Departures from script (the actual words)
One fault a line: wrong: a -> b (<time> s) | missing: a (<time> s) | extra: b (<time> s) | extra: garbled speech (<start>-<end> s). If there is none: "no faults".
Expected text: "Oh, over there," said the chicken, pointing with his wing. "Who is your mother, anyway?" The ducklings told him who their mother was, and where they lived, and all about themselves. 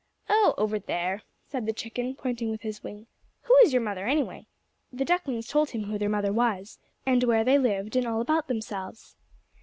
no faults